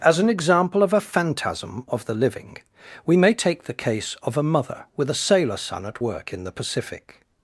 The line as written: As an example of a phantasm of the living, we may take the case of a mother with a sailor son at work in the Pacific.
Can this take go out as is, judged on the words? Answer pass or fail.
pass